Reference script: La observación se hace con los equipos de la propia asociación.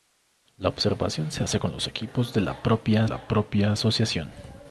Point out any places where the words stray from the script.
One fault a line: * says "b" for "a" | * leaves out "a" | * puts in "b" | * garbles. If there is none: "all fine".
* puts in "la propia"